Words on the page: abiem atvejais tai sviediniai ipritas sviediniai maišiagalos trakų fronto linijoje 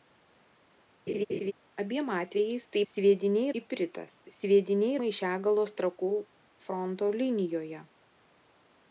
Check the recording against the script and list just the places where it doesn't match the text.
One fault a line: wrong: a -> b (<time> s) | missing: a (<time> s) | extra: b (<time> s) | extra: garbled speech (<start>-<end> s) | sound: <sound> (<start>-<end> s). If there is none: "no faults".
sound: laugh (1.1-1.5 s)